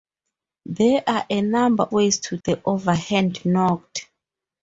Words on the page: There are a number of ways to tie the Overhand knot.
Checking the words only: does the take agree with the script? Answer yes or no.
no